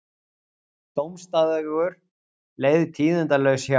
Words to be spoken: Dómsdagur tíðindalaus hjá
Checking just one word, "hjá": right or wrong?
right